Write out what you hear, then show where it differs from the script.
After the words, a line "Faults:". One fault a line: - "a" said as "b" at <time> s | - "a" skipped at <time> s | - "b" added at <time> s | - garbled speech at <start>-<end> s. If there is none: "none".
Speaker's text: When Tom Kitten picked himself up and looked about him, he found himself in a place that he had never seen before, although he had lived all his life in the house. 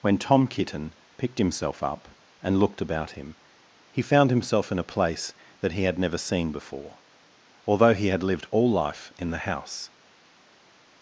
When Tom Kitten picked himself up and looked about him, he found himself in a place that he had never seen before, although he had lived all life in the house.
Faults:
- "his" skipped at 8.7 s